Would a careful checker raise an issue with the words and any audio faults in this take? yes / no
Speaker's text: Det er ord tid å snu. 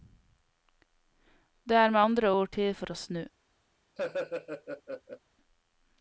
yes